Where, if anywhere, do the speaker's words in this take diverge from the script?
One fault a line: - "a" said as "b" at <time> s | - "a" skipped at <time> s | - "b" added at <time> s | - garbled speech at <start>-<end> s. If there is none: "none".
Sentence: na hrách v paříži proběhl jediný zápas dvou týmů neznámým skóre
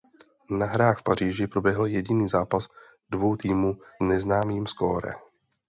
none